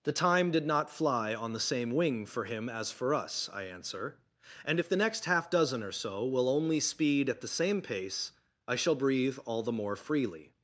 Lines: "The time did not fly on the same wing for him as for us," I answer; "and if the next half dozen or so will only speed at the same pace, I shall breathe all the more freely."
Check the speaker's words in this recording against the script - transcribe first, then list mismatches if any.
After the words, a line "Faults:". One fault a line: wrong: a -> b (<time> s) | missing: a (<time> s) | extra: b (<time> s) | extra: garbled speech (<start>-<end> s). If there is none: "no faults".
"The time did not fly on the same wing for him as for us," I answer; "and if the next half dozen or so will only speed at the same pace, I shall breathe all the more freely."
Faults:
no faults